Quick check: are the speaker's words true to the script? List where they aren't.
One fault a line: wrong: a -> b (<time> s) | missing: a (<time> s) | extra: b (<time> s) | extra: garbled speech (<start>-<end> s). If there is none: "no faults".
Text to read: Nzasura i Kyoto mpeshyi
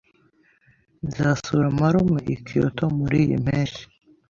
extra: marume (1.8 s)
extra: muriyi (3.0 s)